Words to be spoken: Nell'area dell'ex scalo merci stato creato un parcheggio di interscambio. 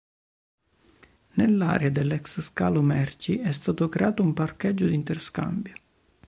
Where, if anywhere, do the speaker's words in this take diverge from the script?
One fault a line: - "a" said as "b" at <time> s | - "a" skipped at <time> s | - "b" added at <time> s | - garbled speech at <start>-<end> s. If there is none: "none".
- "è" added at 3.4 s